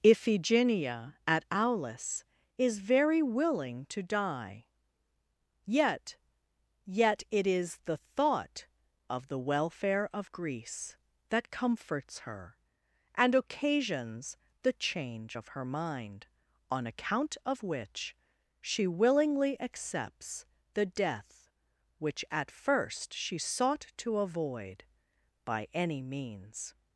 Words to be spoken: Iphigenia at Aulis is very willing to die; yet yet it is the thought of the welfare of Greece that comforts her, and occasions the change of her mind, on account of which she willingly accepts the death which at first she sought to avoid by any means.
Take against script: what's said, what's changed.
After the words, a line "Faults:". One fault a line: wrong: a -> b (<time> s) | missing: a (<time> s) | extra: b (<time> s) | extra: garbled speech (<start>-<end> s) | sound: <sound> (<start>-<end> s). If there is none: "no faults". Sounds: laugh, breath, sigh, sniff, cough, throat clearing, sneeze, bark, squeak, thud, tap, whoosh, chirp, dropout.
Iphigenia at Aulis is very willing to die; yet yet it is the thought of the welfare of Greece that comforts her, and occasions the change of her mind, on account of which she willingly accepts the death which at first she sought to avoid by any means.
Faults:
no faults